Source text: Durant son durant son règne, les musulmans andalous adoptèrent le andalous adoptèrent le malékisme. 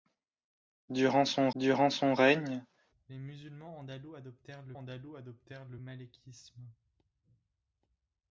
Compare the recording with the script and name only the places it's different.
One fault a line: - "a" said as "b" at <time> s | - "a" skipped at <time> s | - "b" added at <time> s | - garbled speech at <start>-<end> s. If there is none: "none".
none